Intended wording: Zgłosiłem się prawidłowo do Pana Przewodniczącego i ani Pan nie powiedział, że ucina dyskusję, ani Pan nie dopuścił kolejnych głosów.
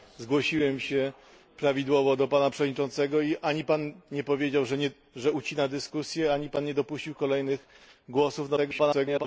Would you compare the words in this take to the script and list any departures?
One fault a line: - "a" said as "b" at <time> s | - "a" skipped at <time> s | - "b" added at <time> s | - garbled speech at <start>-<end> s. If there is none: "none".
- garbled speech at 8.6-9.2 s